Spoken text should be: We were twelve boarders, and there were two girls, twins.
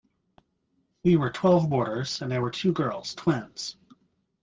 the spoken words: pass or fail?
pass